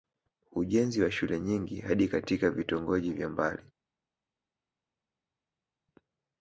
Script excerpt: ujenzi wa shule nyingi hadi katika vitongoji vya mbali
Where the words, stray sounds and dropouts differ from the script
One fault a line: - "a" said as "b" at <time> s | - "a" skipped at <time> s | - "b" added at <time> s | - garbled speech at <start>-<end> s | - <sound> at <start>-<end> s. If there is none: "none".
none